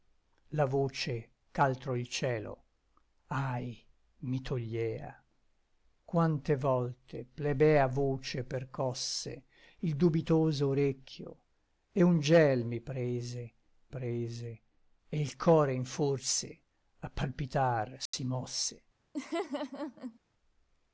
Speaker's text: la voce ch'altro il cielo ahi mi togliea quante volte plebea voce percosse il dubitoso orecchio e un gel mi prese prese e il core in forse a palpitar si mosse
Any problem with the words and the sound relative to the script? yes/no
yes